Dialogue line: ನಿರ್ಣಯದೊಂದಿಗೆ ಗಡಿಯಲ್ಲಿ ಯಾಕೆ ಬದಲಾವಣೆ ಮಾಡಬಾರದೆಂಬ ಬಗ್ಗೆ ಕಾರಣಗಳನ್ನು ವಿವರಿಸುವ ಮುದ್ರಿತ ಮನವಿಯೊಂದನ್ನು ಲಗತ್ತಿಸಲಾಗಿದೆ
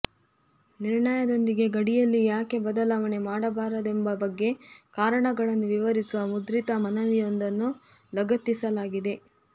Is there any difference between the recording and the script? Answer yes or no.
no